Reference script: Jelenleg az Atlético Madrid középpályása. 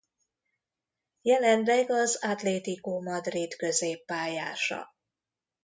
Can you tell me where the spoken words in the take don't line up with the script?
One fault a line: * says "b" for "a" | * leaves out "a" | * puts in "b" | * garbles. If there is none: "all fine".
all fine